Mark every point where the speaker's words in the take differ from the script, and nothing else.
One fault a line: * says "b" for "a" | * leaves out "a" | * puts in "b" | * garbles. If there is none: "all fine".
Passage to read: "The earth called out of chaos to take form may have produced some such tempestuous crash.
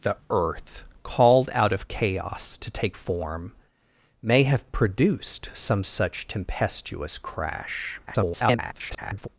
* garbles